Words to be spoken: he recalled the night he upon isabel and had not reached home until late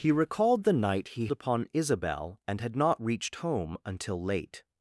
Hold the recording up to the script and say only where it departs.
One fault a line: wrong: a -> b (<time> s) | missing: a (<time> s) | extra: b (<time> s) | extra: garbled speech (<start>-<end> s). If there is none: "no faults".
no faults